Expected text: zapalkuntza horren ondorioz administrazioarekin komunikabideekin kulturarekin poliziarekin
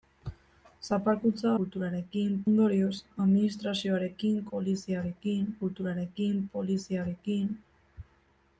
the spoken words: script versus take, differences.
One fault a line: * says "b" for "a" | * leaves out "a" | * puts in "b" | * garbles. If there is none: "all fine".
* says "kulturarekin" for "horren"
* says "poliziarekin" for "komunikabideekin"